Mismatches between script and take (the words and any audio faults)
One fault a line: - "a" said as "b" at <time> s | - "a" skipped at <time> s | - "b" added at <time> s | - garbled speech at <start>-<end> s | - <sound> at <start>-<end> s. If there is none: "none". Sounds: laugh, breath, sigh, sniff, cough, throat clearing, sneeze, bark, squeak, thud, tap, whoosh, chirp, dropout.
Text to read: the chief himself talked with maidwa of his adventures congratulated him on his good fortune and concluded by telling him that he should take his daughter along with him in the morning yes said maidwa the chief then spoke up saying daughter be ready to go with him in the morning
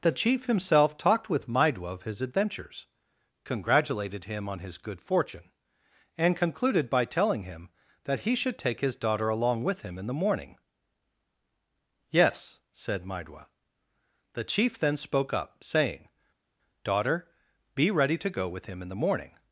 none